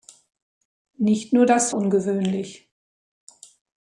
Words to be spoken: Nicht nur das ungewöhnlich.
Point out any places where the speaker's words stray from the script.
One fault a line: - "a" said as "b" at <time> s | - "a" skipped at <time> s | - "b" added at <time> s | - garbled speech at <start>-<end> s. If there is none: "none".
none